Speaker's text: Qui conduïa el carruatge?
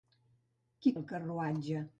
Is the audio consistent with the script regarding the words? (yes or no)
no